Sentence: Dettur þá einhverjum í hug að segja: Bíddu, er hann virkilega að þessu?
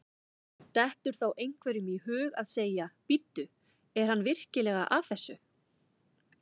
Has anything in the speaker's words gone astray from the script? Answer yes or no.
no